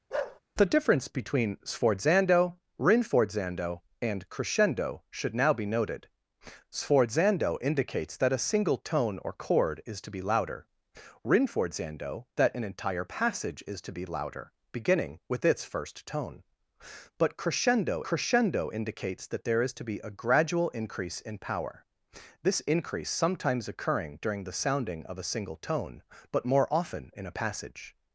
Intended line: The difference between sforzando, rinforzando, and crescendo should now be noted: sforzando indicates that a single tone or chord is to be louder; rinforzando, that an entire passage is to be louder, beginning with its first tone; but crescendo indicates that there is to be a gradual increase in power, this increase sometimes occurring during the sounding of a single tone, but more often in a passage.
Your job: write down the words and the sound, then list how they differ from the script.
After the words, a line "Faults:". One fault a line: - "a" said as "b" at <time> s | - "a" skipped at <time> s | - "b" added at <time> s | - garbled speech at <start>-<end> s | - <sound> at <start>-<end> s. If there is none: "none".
The difference between sforzando, rinforzando, and crescendo should now be noted: sforzando indicates that a single tone or chord is to be louder; rinforzando, that an entire passage is to be louder, beginning with its first tone; but crescendo crescendo indicates that there is to be a gradual increase in power, this increase sometimes occurring during the sounding of a single tone, but more often in a passage.
Faults:
- bark at 0.1-0.4 s
- "crescendo" added at 18.0 s